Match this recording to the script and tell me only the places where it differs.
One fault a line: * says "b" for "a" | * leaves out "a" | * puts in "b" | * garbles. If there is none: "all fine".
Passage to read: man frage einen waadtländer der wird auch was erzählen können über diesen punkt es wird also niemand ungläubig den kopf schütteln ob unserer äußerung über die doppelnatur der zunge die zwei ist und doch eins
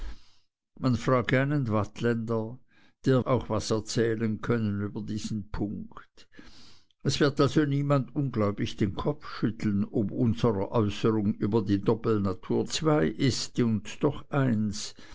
* leaves out "wird"
* leaves out "der zunge die"